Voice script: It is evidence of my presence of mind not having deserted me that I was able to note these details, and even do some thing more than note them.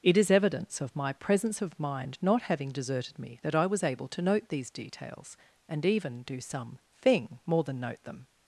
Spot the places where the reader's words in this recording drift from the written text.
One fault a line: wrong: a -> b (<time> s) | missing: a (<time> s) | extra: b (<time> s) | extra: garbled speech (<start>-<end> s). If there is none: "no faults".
no faults